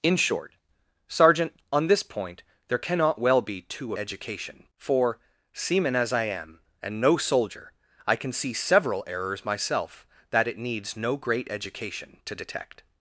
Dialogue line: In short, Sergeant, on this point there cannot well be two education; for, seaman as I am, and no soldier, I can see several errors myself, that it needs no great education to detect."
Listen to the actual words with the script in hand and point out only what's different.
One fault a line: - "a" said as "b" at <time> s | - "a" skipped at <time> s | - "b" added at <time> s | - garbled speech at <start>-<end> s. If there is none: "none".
none